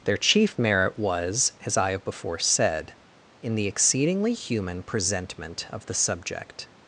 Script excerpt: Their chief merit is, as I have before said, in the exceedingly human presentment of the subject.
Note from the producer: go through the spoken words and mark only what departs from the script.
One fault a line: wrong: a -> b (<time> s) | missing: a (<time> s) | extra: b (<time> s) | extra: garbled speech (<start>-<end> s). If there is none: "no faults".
wrong: is -> was (1.0 s)